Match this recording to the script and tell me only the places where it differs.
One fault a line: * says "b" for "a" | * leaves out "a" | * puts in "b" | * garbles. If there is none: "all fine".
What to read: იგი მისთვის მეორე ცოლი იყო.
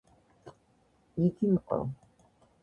* leaves out "მისთვის მეორე ცოლი"